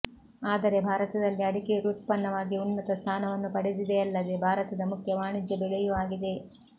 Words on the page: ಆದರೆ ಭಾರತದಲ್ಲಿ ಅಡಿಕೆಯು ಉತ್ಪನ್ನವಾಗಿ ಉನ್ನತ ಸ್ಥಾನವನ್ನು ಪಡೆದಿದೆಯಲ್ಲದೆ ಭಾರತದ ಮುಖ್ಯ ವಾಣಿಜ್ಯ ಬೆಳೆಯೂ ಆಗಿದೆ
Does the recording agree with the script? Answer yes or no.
yes